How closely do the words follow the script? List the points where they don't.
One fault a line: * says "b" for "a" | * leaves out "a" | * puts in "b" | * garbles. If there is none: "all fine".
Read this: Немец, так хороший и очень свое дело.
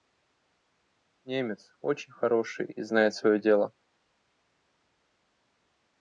* says "очень" for "так"
* says "знает" for "очень"